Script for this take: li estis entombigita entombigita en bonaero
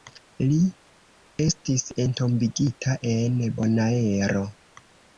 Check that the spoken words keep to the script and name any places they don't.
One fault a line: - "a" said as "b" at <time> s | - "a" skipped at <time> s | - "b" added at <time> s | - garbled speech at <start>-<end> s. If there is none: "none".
- "entombigita" skipped at 3.0 s